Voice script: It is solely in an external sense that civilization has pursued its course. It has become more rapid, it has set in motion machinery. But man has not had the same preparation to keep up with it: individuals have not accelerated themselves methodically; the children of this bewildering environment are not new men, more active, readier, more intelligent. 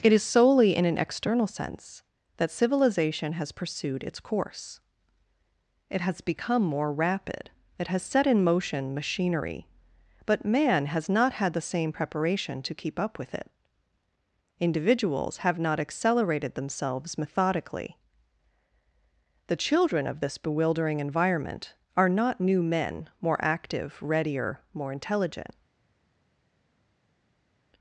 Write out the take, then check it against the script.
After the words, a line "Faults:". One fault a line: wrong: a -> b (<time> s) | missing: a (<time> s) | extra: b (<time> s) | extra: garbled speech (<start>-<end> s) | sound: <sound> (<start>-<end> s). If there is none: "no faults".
It is solely in an external sense that civilization has pursued its course. It has become more rapid, it has set in motion machinery. But man has not had the same preparation to keep up with it: individuals have not accelerated themselves methodically; the children of this bewildering environment are not new men, more active, readier, more intelligent.
Faults:
no faults